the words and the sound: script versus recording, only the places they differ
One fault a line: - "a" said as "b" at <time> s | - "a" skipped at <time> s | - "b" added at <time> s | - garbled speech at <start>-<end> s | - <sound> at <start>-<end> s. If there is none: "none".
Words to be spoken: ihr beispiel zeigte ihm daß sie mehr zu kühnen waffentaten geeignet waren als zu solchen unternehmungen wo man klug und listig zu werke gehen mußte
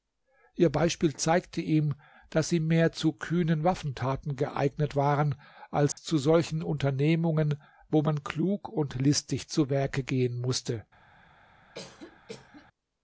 - dropout at 5.9-6.0 s
- cough at 11.7-12.7 s